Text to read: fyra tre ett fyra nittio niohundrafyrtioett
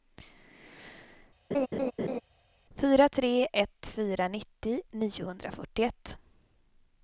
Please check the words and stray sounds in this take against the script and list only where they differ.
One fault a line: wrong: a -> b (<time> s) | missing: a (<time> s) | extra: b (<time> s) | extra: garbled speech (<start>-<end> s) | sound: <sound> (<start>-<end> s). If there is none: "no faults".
sound: laugh (1.5-2.2 s)